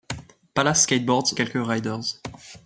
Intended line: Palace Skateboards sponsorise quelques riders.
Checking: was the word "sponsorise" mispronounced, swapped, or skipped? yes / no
yes